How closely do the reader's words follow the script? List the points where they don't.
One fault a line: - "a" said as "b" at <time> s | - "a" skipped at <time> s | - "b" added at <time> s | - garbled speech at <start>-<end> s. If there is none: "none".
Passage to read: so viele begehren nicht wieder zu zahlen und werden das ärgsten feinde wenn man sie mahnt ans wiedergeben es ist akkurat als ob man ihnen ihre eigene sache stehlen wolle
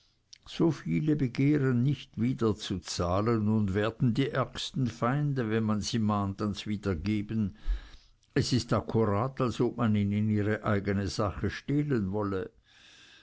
- "das" said as "die" at 4.1 s